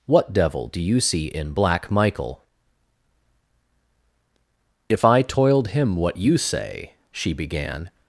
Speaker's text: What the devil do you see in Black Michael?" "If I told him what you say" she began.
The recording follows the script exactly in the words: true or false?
false